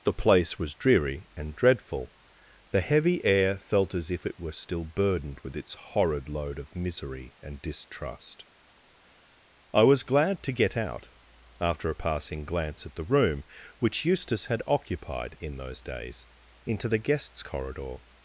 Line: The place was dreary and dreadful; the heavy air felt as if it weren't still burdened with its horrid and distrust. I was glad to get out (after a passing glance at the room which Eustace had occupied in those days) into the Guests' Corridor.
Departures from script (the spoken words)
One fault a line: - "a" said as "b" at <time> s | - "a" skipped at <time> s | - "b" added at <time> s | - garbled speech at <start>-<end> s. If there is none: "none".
- "weren't" said as "were" at 4.4 s
- "load of misery" added at 6.3 s